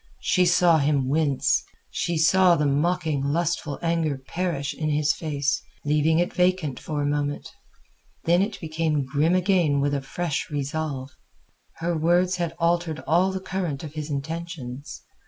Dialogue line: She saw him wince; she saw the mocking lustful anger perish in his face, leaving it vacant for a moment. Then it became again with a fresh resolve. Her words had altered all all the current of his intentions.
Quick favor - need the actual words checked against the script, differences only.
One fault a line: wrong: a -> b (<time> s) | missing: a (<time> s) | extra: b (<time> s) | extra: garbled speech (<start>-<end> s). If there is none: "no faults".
extra: grim (9.1 s)
missing: all (13.3 s)